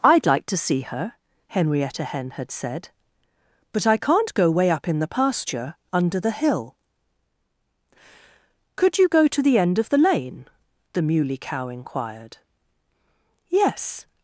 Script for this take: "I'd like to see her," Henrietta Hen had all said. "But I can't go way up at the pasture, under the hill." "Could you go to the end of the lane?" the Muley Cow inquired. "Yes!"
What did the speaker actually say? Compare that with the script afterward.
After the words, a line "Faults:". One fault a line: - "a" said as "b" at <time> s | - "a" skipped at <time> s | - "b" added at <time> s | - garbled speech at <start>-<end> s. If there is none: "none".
"I'd like to see her," Henrietta Hen had said. "But I can't go way up in the pasture, under the hill." "Could you go to the end of the lane?" the Muley Cow inquired. "Yes!"
Faults:
- "all" skipped at 2.5 s
- "at" said as "in" at 4.9 s